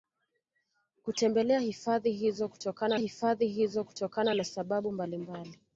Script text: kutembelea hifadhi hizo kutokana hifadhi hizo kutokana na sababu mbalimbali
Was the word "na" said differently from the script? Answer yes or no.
no